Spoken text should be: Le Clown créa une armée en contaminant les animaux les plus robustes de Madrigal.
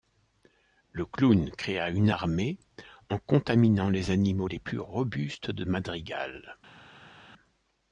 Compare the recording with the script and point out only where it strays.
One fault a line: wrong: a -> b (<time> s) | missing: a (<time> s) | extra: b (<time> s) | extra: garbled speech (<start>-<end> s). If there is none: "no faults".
no faults